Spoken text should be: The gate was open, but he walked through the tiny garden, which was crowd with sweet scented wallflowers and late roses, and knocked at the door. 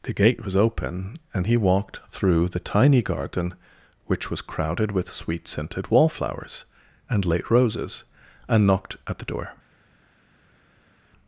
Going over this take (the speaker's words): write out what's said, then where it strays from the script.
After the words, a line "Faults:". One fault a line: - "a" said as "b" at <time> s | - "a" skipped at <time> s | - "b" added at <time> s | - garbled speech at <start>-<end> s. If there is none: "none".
The gate was open, and he walked through the tiny garden, which was crowded with sweet scented wallflowers and late roses, and knocked at the door.
Faults:
- "but" said as "and" at 1.3 s
- "crowd" said as "crowded" at 4.4 s